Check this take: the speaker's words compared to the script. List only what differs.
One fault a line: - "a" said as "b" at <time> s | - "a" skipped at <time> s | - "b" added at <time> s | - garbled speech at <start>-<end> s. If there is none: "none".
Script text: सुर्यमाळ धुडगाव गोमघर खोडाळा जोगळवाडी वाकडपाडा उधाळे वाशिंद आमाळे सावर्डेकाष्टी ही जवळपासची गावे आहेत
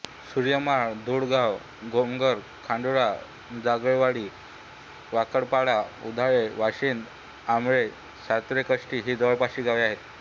none